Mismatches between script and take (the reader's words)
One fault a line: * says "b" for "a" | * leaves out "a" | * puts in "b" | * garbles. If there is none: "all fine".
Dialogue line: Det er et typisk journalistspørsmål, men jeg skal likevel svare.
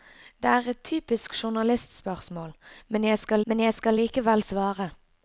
* puts in "men jeg skal"